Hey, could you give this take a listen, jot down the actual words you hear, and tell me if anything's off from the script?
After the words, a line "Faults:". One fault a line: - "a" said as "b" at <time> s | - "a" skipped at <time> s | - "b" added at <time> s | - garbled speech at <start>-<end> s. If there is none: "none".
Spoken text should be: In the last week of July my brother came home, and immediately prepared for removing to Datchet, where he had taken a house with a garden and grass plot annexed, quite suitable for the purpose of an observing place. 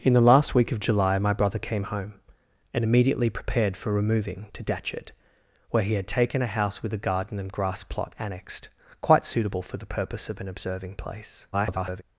In the last week of July my brother came home, and immediately prepared for removing to Datchet, where he had taken a house with a garden and grass plot annexed, quite suitable for the purpose of an observing place. [garbled]
Faults:
- garbled speech at 11.5-12.0 s